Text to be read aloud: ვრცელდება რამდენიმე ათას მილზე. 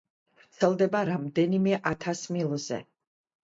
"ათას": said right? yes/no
yes